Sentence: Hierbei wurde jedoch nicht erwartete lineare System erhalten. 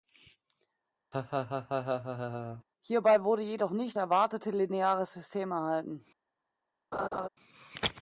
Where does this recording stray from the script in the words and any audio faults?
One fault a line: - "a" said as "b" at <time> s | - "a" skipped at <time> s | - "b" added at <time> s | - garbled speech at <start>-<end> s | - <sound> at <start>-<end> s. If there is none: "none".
- laugh at 1.1-2.6 s
- laugh at 6.9-7.3 s